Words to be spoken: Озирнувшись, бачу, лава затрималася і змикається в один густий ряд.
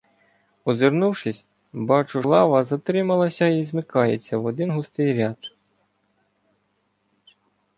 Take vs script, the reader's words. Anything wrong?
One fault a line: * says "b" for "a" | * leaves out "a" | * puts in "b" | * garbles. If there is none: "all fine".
all fine